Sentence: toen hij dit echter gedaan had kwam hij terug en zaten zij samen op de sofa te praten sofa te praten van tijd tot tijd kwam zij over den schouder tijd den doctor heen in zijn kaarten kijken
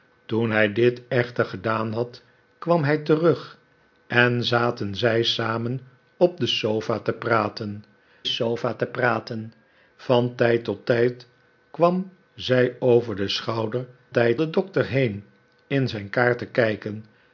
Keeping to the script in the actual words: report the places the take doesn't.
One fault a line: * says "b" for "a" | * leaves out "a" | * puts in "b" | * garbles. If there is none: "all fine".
all fine